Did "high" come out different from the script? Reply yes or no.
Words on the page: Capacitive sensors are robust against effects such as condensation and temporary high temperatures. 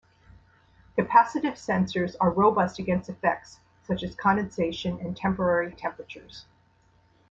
yes